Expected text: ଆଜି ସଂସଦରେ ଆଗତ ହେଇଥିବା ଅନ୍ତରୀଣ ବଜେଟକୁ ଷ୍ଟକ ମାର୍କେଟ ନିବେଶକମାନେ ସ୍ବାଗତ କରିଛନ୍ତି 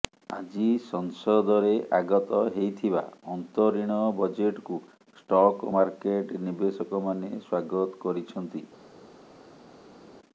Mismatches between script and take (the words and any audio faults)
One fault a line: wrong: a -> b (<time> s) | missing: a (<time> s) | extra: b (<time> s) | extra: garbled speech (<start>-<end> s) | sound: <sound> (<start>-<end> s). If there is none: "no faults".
no faults